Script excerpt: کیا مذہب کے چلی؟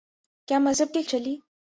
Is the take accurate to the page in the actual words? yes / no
yes